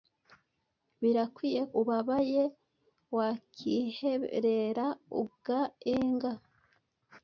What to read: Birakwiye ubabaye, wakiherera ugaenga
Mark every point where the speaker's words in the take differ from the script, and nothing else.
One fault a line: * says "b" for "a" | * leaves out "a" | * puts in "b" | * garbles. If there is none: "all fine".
all fine